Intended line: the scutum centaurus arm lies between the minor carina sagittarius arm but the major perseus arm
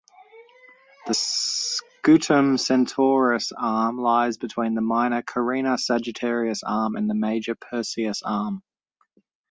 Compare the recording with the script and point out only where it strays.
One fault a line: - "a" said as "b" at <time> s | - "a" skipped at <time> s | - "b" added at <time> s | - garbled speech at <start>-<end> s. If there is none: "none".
- "but" said as "and" at 7.0 s